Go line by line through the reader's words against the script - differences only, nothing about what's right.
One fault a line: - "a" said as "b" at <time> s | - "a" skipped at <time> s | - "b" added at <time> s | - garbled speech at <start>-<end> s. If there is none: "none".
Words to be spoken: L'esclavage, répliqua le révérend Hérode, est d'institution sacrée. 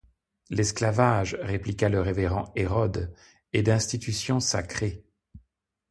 none